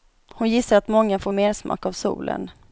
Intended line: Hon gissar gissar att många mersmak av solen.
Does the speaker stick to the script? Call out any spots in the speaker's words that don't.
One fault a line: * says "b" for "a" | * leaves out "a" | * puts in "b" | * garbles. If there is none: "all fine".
* leaves out "gissar"
* puts in "får"